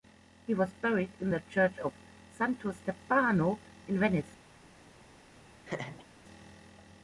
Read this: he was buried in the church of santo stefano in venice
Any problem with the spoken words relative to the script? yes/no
no